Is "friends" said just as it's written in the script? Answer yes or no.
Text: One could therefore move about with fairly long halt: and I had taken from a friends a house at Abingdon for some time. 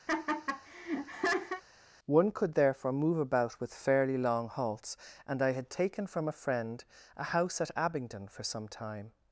no